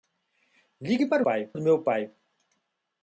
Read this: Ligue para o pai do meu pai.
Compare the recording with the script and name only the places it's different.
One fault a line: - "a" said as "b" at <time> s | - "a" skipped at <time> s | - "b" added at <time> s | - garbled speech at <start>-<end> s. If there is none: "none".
none